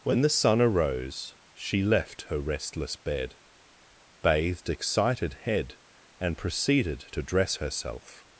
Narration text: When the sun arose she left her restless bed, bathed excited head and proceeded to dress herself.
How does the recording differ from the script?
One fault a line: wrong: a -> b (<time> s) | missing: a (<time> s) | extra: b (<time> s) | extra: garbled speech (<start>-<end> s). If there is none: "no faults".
no faults